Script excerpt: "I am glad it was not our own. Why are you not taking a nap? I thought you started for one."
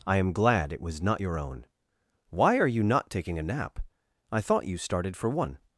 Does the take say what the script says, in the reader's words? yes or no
no